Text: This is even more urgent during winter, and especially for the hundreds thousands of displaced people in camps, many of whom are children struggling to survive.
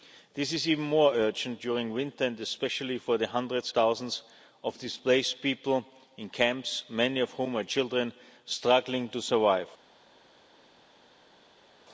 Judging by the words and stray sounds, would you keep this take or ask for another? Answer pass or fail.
pass